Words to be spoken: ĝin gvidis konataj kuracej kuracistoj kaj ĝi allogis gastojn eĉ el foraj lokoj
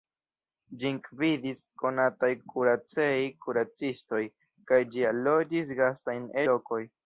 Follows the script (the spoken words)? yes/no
no